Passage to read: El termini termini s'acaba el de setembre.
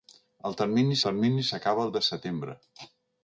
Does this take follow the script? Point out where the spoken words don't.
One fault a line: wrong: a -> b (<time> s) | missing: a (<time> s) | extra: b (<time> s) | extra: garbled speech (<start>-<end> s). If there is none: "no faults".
no faults